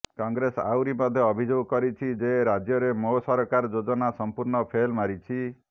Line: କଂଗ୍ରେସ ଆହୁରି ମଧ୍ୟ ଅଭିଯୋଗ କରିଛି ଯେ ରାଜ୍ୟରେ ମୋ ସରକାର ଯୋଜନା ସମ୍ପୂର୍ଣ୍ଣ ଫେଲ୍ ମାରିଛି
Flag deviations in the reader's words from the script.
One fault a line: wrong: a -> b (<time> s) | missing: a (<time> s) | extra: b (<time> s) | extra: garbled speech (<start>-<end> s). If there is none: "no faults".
no faults